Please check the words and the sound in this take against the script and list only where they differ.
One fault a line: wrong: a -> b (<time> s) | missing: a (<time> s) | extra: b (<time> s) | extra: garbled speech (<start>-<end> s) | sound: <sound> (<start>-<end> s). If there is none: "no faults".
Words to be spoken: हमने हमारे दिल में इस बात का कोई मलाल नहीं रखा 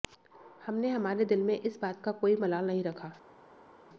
no faults